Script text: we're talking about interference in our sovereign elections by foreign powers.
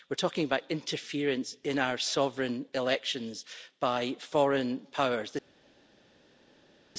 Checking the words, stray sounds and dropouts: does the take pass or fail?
pass